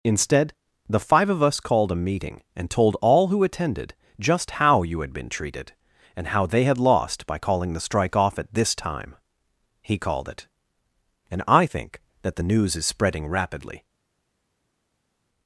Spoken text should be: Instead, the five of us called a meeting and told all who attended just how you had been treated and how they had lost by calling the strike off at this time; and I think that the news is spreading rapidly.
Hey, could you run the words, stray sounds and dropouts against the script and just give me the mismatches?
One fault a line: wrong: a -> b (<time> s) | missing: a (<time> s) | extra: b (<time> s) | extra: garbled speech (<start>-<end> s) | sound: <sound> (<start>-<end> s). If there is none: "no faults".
extra: he called it (9.8 s)